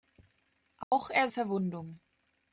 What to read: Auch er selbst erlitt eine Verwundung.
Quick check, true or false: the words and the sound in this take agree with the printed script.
false